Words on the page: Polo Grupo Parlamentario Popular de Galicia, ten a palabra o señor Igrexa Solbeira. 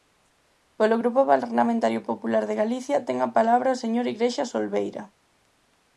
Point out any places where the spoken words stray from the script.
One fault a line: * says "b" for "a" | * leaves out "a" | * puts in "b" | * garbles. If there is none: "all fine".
all fine